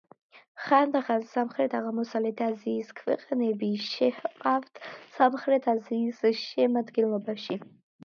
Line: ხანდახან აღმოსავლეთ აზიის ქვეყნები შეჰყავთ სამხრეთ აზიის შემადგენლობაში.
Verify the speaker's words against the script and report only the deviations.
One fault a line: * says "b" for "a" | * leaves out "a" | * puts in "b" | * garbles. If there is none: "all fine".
* puts in "სამხრეთ"